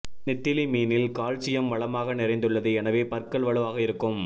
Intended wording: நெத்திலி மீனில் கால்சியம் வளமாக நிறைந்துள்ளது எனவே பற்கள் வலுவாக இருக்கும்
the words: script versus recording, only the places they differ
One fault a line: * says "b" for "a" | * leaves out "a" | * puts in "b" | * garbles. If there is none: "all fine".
all fine